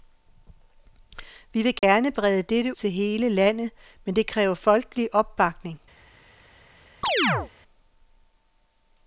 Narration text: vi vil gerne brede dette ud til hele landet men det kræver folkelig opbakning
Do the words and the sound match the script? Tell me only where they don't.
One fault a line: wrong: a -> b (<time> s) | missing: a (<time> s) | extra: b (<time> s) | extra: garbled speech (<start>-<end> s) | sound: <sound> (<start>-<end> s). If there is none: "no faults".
sound: dropout (1.8-1.8 s)
missing: ud (2.8 s)
sound: chirp (7.0-7.5 s)